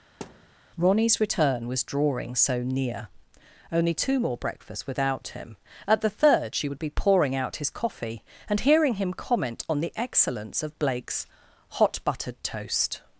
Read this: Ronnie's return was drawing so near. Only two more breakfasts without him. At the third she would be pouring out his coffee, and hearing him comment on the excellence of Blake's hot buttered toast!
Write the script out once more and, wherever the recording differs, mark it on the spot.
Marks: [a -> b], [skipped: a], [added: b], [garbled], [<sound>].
[thud] Ronnie's return was drawing so near. Only two more breakfasts without him. At the third she would be pouring out his coffee, and hearing him comment on the excellence of Blake's hot buttered toast!